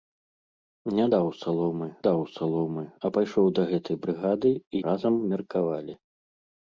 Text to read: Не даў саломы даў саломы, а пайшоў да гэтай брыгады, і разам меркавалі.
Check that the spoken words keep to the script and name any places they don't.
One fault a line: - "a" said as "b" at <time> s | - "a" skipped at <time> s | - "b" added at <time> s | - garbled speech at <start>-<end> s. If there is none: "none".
none